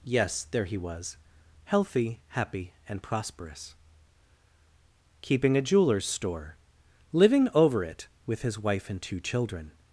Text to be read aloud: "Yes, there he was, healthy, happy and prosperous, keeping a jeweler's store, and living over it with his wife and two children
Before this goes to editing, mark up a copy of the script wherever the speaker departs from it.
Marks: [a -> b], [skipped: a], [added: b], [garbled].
"Yes, there he was, healthy, happy and prosperous, keeping a jeweler's store, [skipped: and] living over it with his wife and two children